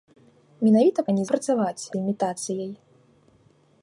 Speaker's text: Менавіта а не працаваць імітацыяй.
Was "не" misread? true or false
false